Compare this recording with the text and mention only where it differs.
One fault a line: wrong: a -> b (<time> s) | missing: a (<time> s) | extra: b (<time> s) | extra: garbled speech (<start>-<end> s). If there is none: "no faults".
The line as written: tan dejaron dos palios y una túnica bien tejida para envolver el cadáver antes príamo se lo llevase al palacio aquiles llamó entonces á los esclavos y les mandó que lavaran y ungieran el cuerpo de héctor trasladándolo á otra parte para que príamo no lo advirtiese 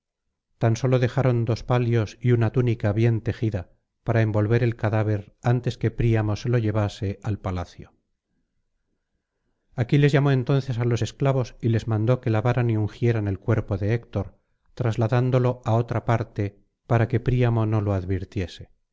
extra: sólo (0.8 s)
extra: que (5.8 s)